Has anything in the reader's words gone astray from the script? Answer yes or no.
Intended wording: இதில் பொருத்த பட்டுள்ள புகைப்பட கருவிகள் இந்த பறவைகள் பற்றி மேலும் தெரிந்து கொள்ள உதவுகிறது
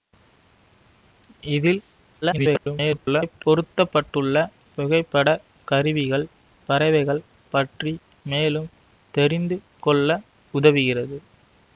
yes